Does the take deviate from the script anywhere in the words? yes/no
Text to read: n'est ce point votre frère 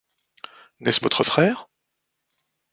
yes